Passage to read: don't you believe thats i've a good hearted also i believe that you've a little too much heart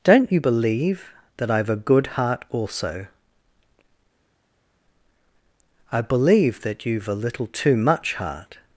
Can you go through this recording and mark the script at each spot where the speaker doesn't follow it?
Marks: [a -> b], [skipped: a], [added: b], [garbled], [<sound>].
don't you believe [thats -> that] i've a good [hearted -> heart] also i believe that you've a little too much heart